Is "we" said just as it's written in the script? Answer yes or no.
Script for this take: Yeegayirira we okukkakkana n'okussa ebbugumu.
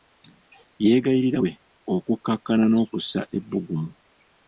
yes